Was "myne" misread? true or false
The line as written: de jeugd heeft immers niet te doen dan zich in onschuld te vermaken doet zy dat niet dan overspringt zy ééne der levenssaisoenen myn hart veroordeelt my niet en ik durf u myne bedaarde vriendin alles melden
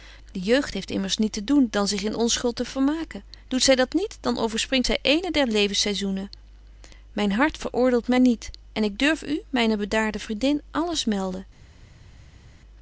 false